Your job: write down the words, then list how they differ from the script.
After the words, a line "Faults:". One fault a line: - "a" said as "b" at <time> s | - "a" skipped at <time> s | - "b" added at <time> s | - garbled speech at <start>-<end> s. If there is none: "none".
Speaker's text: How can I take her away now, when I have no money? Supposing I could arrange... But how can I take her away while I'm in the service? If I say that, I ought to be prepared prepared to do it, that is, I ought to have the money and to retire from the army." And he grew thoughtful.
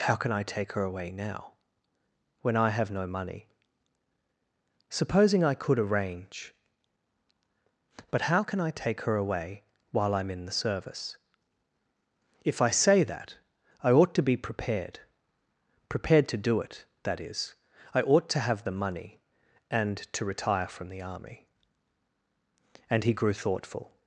How can I take her away now, when I have no money? Supposing I could arrange... But how can I take her away while I'm in the service? If I say that, I ought to be prepared prepared to do it, that is, I ought to have the money and to retire from the army." And he grew thoughtful.
Faults:
none